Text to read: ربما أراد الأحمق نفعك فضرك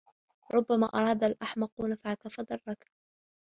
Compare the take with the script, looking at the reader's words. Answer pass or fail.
pass